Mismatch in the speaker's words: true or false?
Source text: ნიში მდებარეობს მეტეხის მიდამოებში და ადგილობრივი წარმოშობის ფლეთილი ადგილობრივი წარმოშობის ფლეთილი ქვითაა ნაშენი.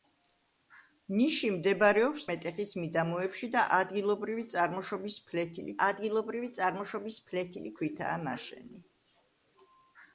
false